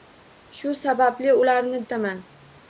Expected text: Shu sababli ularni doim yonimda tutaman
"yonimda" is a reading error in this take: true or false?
true